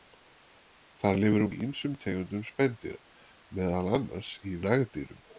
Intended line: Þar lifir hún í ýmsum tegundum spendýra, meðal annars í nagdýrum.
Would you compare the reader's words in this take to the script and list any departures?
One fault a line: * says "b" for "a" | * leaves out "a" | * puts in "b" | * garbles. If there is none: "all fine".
all fine